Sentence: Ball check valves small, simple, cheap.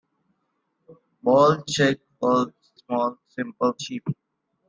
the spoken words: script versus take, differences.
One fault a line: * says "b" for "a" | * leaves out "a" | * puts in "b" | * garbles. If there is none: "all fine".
all fine